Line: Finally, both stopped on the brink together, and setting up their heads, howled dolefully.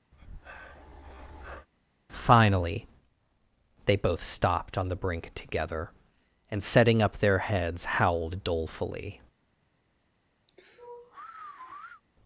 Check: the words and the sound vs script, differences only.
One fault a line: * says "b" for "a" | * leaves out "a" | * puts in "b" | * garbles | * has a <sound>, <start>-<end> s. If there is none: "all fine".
* has a breath, 0.1-1.7 s
* puts in "they"
* has a sigh, 10.5-12.0 s